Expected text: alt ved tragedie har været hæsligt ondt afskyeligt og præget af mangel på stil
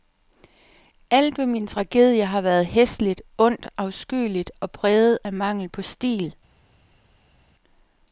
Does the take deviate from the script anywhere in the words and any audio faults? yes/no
yes